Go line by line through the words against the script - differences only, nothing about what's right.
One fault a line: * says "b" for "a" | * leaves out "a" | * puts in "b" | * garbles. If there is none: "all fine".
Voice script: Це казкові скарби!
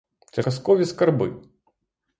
all fine